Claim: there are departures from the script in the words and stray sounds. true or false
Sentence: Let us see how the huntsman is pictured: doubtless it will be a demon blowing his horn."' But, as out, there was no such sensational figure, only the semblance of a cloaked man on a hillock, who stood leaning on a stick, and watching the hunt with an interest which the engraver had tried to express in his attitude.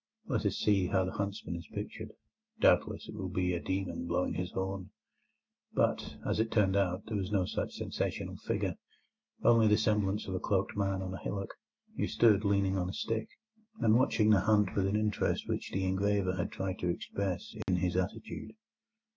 true